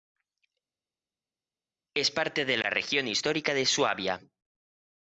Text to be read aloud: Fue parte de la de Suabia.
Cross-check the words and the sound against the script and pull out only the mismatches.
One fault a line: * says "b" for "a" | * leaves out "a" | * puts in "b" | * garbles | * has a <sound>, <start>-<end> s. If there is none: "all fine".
* says "Es" for "Fue"
* puts in "región histórica"